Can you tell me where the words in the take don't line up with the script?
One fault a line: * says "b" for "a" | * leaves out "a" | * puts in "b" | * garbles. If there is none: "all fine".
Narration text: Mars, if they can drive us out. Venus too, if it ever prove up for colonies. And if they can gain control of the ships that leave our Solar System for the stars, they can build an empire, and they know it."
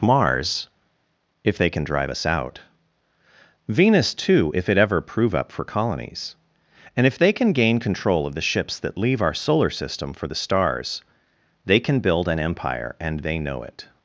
all fine